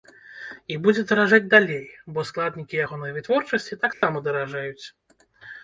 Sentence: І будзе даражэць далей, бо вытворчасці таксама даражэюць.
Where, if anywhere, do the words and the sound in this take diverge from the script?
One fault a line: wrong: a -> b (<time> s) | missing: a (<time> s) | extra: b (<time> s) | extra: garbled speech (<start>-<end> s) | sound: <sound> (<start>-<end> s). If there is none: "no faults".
extra: складнікі ягонай (2.3 s)
sound: dropout (3.9-4.0 s)